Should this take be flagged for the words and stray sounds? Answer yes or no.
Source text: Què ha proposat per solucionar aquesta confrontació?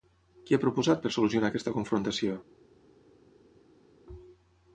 no